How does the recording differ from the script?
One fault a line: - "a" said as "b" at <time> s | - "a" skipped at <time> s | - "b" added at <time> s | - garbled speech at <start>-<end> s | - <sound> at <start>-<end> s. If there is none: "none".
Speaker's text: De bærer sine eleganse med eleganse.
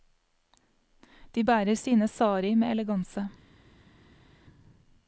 - "eleganse" said as "sari" at 2.1 s